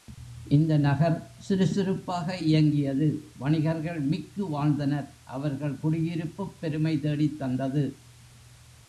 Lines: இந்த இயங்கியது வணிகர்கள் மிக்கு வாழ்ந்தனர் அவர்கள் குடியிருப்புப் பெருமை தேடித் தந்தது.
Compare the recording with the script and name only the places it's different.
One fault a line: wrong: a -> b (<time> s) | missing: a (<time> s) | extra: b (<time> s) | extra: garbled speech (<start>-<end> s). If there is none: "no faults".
extra: நகர் சுருசுருப்பாக (0.8 s)